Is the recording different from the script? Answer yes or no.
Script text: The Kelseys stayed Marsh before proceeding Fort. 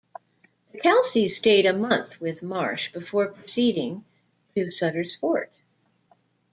yes